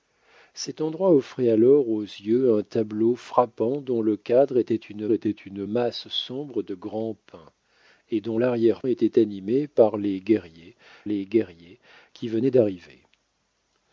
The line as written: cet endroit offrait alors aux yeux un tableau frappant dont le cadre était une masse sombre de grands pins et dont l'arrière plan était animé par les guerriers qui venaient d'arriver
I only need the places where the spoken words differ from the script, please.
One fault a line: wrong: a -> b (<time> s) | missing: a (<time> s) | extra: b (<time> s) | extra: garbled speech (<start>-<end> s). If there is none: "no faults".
extra: était une (5.1 s)
missing: plan (8.8 s)
extra: les guerriers (11.0 s)